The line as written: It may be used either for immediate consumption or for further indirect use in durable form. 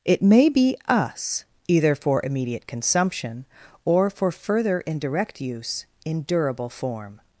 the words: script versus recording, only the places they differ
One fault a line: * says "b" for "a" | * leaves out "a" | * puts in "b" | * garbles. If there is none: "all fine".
* says "us" for "used"